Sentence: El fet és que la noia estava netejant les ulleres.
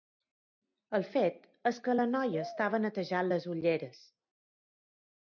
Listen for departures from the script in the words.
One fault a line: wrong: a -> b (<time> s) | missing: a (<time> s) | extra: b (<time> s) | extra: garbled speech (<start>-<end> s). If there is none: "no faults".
no faults